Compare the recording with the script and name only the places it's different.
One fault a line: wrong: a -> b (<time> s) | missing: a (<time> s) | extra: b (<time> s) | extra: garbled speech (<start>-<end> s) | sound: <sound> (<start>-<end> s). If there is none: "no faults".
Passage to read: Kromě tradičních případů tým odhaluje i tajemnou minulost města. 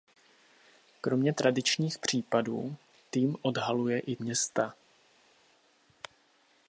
missing: tajemnou minulost (4.2 s)